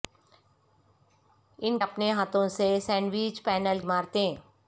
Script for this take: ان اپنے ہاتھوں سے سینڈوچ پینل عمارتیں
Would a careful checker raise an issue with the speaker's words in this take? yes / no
no